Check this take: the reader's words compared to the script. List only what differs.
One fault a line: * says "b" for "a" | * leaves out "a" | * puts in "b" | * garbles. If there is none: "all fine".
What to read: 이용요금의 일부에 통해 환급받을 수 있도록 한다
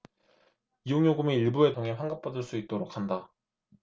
all fine